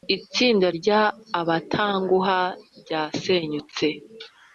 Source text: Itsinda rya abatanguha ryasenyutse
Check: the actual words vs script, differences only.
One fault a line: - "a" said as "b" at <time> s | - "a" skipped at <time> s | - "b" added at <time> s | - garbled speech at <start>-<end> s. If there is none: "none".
none